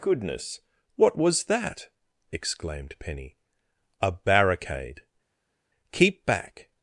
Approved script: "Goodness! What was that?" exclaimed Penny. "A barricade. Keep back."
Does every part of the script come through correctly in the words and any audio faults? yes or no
yes